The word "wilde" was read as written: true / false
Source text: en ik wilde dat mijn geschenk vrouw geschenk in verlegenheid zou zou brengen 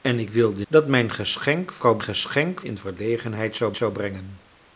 true